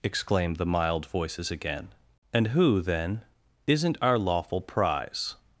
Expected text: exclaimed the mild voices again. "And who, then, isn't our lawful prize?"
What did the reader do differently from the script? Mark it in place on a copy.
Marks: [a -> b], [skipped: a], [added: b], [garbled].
exclaimed the mild voices again. "And who, then, isn't our lawful prize?"